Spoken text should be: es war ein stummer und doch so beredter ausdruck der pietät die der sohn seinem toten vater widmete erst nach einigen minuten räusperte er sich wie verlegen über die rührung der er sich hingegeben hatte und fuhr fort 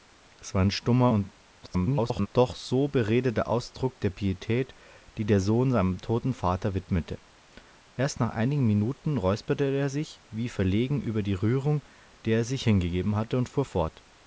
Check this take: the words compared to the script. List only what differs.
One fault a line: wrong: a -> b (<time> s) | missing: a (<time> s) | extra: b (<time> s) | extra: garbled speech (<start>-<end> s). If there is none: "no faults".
extra: garbled speech (1.6-2.3 s)